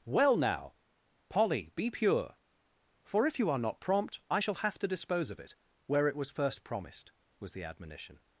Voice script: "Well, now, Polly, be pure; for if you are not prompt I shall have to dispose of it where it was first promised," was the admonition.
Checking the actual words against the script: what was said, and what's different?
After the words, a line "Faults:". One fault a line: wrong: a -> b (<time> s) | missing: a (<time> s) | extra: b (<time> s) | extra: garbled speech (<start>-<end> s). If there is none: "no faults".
"Well, now, Polly, be pure; for if you are not prompt I shall have to dispose of it where it was first promised," was the admonition.
Faults:
no faults